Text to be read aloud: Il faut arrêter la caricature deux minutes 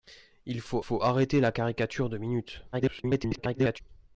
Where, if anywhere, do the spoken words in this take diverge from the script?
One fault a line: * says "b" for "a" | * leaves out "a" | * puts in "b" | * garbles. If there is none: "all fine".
* puts in "faut"
* garbles